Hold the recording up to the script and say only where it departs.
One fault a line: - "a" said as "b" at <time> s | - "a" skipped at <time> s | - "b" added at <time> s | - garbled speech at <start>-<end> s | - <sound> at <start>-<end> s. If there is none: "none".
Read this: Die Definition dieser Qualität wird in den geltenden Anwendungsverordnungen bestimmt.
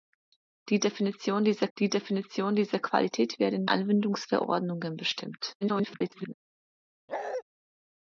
- "die Definition dieser" added at 1.8 s
- "den geltenden" skipped at 3.7 s
- garbled speech at 5.6-6.3 s
- bark at 7.1-7.4 s